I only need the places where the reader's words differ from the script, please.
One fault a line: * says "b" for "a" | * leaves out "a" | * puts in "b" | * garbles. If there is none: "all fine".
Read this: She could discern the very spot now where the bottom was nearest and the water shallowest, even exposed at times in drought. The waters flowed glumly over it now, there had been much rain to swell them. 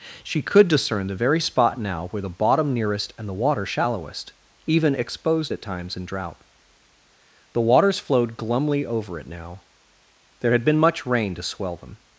* leaves out "was"